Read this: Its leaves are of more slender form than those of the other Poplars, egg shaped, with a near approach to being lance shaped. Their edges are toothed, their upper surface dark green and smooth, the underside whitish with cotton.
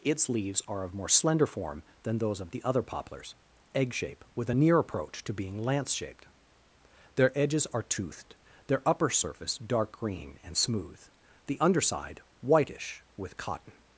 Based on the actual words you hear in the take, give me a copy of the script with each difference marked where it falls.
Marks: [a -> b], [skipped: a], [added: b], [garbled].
Its leaves are of more slender form than those of the other Poplars, egg [shaped, -> shape] with a near approach to being lance shaped. Their edges are toothed, their upper surface dark green and smooth, the underside whitish with cotton.